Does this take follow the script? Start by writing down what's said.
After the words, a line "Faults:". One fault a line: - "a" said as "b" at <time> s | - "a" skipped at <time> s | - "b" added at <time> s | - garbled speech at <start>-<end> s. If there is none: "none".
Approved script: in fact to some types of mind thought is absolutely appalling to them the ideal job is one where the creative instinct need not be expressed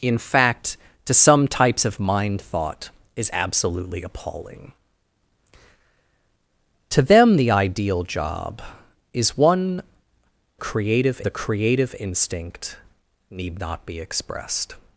in fact to some types of mind thought is absolutely appalling to them the ideal job is one creative the creative instinct need not be expressed
Faults:
- "where" said as "creative" at 10.6 s